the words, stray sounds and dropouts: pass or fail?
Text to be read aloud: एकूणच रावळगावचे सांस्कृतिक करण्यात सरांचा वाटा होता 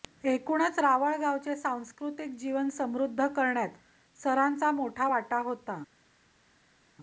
fail